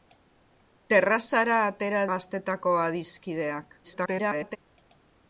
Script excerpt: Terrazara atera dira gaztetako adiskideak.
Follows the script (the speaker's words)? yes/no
no